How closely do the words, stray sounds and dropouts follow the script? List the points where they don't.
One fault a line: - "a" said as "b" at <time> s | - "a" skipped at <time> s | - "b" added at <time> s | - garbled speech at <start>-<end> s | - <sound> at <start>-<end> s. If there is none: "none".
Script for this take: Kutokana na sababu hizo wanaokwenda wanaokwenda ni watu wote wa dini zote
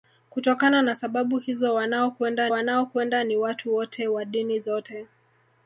none